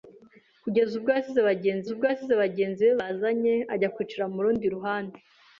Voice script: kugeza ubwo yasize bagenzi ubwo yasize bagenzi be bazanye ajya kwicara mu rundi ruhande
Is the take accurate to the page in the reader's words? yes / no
yes